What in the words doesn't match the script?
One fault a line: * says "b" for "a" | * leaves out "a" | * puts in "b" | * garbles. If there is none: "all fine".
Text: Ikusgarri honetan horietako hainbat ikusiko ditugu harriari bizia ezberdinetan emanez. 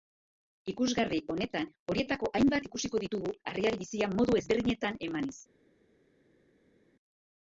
* puts in "modu"